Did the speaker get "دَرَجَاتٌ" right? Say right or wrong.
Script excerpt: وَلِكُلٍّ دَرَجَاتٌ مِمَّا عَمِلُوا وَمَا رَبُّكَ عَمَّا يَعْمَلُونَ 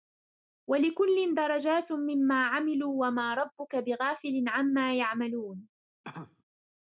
right